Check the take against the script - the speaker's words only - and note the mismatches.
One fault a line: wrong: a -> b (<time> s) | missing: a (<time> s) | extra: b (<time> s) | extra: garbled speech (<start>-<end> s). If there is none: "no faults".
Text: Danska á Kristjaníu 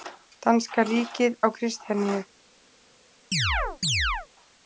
extra: ríkið (0.9 s)